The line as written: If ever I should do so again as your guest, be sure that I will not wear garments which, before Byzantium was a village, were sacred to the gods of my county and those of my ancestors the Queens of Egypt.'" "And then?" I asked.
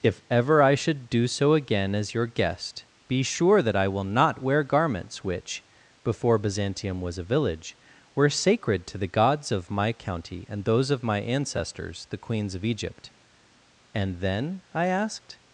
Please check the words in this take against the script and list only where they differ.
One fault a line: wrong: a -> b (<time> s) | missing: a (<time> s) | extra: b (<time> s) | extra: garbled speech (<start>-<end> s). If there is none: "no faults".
no faults